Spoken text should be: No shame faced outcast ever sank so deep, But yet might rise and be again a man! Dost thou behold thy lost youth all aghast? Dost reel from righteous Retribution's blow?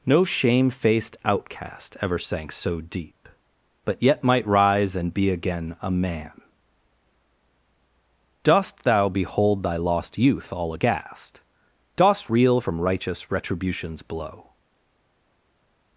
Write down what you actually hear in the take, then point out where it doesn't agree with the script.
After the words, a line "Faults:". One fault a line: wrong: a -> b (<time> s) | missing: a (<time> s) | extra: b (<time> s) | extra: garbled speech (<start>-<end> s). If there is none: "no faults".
No shame faced outcast ever sank so deep, But yet might rise and be again a man! Dost thou behold thy lost youth all aghast? Dost reel from righteous Retribution's blow?
Faults:
no faults